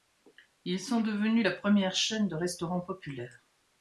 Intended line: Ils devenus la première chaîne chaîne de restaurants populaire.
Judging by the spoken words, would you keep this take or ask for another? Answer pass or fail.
fail